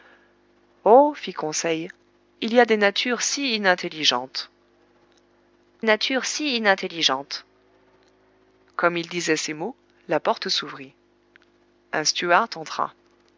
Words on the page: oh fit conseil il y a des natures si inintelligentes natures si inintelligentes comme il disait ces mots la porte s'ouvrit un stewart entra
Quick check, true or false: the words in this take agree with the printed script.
true